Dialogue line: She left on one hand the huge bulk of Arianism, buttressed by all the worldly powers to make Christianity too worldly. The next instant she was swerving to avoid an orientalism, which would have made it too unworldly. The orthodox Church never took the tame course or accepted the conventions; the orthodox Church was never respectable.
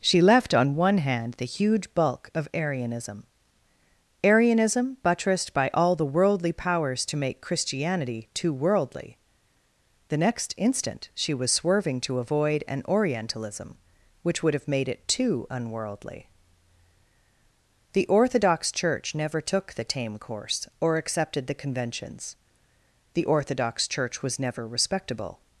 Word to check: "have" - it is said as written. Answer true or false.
true